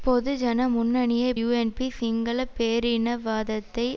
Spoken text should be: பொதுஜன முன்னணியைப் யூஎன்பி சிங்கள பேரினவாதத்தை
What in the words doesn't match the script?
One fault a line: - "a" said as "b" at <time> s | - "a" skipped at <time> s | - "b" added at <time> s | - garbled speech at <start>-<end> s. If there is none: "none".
none